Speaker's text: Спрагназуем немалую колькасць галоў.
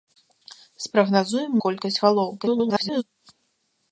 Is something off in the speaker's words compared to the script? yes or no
yes